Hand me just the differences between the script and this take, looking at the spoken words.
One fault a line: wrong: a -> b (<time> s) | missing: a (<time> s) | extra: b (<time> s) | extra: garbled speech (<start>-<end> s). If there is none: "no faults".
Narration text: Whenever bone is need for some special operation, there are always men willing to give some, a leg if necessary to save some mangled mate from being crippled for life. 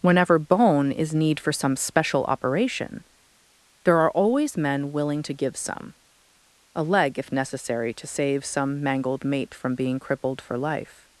no faults